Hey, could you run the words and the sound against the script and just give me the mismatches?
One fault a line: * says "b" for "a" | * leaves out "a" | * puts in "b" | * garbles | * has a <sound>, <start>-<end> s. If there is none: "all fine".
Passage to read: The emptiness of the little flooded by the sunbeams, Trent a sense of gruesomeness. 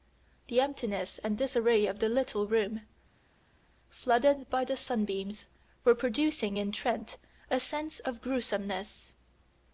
* puts in "and disarray"
* puts in "room"
* puts in "were producing in"